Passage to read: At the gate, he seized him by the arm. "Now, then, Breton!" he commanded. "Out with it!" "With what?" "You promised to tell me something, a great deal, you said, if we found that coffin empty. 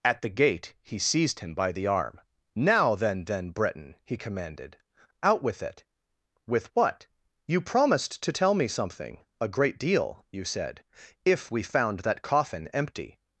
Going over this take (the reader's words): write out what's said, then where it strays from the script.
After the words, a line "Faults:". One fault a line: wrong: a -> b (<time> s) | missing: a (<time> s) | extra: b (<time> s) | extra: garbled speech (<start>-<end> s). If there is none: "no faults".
At the gate, he seized him by the arm. "Now, then then, Breton!" he commanded. "Out with it!" "With what?" "You promised to tell me something, a great deal, you said, if we found that coffin empty.
Faults:
extra: then (3.2 s)